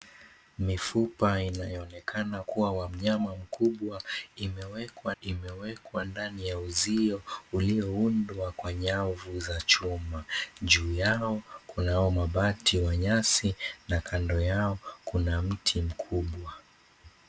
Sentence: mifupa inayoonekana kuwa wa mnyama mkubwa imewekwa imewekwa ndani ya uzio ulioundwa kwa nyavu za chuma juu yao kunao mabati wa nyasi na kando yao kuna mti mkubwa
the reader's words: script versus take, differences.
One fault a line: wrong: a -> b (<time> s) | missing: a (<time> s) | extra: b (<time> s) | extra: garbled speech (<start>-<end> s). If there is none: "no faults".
no faults